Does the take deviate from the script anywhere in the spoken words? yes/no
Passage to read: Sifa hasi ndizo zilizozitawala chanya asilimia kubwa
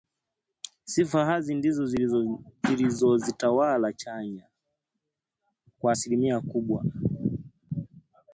yes